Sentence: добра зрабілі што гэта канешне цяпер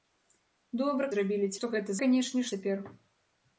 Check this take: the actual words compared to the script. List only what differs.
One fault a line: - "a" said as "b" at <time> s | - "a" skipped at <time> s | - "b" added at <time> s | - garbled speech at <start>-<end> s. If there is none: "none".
none